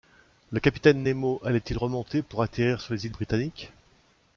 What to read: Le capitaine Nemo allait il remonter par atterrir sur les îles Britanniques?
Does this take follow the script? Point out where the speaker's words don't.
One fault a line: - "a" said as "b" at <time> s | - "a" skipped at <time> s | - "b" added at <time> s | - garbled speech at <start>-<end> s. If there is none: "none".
- "par" said as "pour" at 2.2 s